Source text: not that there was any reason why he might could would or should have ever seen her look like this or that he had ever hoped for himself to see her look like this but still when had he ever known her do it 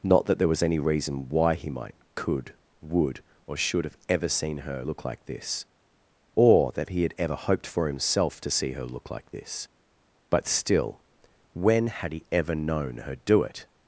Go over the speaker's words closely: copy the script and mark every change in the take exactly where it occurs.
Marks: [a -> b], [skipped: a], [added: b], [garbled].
not that there was any reason why he might could would or should have ever seen her look like this or that he had ever hoped for himself to see her look like this but still when had he ever known her do it